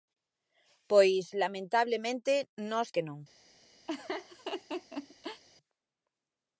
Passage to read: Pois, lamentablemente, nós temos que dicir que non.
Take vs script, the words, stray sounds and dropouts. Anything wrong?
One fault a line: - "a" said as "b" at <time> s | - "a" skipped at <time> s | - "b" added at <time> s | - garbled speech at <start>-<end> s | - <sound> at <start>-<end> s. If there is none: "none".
- "temos que dicir" skipped at 2.9 s
- laugh at 3.9-5.4 s